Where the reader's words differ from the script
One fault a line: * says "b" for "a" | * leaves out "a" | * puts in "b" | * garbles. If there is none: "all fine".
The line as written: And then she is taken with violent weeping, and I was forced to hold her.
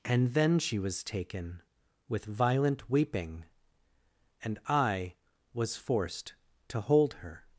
* says "was" for "is"